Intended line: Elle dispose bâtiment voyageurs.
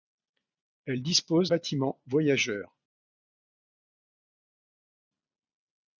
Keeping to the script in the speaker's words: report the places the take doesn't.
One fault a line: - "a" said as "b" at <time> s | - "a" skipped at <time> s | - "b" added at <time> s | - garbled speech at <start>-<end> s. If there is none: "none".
none